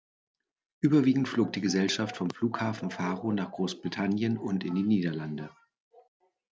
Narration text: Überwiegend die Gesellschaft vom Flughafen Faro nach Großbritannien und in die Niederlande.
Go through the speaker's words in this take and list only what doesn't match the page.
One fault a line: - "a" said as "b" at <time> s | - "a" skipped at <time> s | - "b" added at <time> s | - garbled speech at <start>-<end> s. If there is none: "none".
- "flog" added at 1.3 s